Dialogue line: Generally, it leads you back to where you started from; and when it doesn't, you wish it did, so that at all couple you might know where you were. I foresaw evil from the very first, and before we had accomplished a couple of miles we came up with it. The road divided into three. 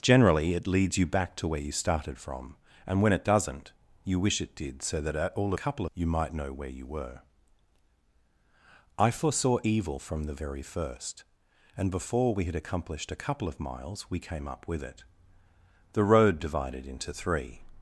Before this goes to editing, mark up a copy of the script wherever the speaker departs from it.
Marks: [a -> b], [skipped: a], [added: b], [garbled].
Generally, it leads you back to where you started from; and when it doesn't, you wish it did, so that at all couple you might know where you were. I foresaw evil from the very first, and before we had accomplished a couple of miles we came up with it. The road divided into three.